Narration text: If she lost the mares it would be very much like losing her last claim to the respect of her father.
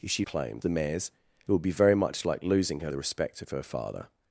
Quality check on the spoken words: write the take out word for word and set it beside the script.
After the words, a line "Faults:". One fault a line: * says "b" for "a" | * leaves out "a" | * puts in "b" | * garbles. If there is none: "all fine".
If she claim the mares it would be very much like losing her the respect of her father.
Faults:
* says "claim" for "lost"
* leaves out "last claim to"